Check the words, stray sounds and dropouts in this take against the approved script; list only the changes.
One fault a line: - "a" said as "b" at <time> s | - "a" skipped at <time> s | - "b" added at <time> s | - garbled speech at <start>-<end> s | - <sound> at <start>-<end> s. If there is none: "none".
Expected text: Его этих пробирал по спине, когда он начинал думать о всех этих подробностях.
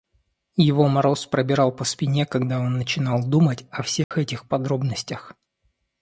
- "этих" said as "мороз" at 0.9 s
- dropout at 4.0-4.1 s